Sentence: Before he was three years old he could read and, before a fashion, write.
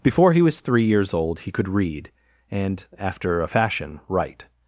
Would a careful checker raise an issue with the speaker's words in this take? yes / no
yes